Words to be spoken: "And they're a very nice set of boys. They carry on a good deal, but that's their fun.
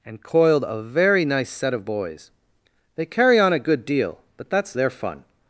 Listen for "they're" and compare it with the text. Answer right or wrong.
wrong